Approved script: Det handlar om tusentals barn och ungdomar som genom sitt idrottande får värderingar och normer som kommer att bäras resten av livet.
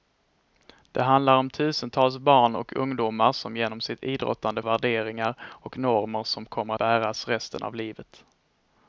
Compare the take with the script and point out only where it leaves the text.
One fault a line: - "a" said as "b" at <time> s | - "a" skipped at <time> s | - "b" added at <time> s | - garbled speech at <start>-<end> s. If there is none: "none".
- "får" skipped at 4.6 s
- "att" skipped at 6.7 s